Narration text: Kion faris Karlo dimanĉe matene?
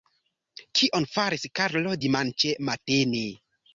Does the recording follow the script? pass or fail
pass